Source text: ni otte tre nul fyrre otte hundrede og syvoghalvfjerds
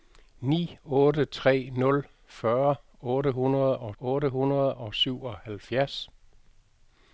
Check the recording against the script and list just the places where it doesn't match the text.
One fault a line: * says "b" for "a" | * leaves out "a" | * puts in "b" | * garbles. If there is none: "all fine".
* puts in "otte hundrede og"